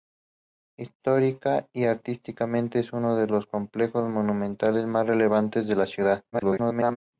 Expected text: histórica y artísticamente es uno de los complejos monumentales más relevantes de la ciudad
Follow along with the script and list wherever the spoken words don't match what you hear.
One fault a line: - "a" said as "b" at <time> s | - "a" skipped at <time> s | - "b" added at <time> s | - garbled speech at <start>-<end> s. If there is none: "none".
- garbled speech at 6.3-7.0 s